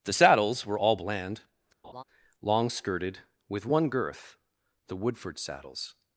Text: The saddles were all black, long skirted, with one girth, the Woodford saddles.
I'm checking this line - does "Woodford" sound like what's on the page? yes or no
yes